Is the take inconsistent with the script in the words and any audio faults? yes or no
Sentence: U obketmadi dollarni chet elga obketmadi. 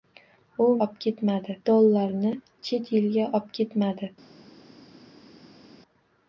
no